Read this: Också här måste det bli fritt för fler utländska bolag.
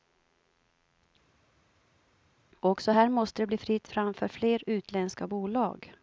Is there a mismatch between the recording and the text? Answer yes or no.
yes